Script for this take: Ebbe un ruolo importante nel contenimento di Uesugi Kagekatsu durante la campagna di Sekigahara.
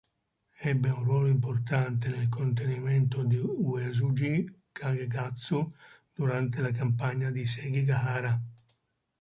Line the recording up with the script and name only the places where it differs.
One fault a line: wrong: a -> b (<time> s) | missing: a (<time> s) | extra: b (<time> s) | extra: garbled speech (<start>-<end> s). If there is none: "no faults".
no faults